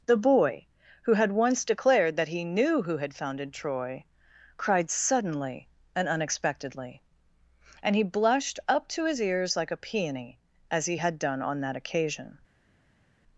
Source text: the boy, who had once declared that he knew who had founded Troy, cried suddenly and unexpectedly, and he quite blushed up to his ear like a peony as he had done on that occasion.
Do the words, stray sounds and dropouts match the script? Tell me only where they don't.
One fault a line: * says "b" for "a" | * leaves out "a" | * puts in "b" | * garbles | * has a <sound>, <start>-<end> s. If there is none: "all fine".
* leaves out "quite"
* says "ears" for "ear"